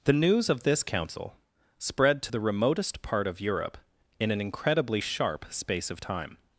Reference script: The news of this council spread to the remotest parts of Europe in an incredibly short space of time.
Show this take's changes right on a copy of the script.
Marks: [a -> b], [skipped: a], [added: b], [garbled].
The news of this council spread to the remotest [parts -> part] of Europe in an incredibly [short -> sharp] space of time.